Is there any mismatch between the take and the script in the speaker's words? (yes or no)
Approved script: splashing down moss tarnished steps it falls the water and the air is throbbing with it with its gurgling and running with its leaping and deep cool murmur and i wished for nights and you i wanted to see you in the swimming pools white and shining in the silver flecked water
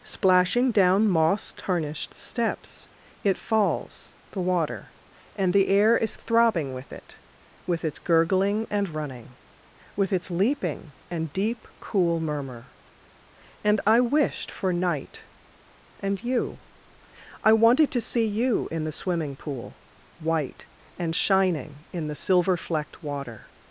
yes